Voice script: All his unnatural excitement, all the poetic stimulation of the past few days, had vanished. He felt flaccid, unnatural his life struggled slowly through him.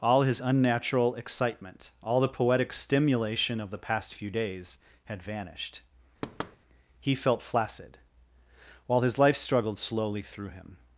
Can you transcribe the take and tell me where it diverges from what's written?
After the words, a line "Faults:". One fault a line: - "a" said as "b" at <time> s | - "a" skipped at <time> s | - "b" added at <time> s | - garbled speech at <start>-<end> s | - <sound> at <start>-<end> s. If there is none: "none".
All his unnatural excitement, all the poetic stimulation of the past few days, had vanished. He felt flaccid, while his life struggled slowly through him.
Faults:
- thud at 6.2-6.6 s
- "unnatural" said as "while" at 8.9 s